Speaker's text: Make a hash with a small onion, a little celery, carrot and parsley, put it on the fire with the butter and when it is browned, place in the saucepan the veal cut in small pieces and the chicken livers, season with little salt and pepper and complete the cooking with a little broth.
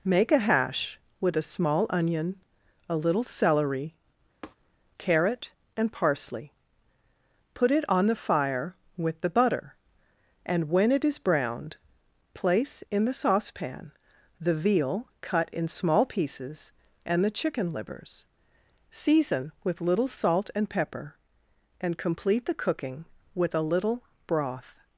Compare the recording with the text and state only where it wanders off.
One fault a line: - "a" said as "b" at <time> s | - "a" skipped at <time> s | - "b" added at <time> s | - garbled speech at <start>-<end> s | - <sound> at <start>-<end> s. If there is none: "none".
- tap at 4.4-4.6 s